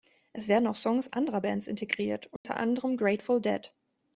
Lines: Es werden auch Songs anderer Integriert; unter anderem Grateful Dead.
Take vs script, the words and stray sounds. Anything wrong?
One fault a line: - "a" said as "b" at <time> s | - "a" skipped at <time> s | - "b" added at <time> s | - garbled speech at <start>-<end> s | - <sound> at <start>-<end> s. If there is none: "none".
- "Bands" added at 1.4 s
- dropout at 2.4-2.4 s